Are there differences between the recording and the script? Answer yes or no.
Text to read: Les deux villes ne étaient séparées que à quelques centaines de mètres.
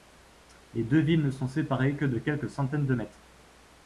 yes